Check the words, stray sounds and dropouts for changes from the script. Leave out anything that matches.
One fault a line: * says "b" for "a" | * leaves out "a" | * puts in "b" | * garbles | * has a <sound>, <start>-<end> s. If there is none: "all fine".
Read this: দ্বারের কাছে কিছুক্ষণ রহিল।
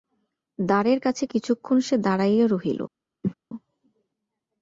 * puts in "সে দাঁড়াইয়া"
* has a cough, 3.2-3.3 s